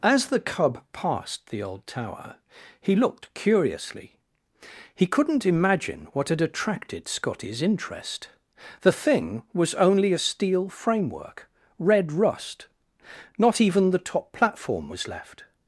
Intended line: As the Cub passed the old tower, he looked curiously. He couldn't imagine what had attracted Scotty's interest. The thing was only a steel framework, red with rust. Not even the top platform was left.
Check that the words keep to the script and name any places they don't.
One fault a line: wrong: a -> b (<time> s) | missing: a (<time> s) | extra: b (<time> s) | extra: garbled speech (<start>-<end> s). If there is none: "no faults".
missing: with (12.1 s)